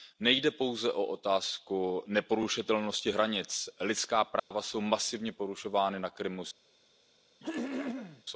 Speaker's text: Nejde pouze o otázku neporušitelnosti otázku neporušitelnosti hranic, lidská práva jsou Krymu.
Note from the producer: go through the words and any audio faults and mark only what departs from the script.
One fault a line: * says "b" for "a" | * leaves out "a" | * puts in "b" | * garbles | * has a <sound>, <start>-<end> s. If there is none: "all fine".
* leaves out "otázku neporušitelnosti"
* has a dropout, 4.4-4.5 s
* puts in "masivně porušována na"
* has a throat clearing, 7.4-8.2 s